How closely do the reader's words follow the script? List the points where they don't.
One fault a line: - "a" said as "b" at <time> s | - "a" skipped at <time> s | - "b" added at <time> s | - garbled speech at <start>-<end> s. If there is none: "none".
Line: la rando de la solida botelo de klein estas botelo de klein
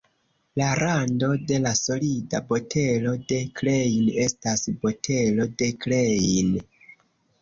none